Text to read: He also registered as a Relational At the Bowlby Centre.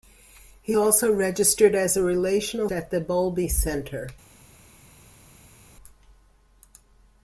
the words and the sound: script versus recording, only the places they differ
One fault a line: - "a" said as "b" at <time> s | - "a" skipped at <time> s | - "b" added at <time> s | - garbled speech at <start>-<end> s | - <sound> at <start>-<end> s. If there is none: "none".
none